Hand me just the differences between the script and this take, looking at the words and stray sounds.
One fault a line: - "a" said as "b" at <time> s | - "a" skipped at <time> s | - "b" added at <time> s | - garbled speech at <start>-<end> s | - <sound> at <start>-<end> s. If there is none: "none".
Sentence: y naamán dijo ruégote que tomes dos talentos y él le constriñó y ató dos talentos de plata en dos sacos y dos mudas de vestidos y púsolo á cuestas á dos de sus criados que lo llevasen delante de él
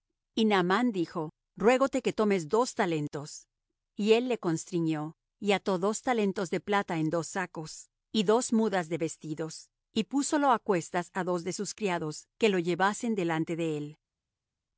none